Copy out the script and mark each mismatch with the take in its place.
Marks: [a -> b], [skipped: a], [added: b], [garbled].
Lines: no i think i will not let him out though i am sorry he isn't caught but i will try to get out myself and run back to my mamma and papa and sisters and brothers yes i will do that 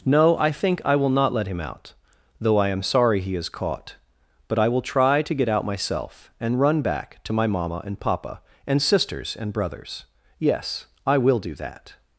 no i think i will not let him out though i am sorry he [isn't -> is] caught but i will try to get out myself and run back to my mamma and papa and sisters and brothers yes i will do that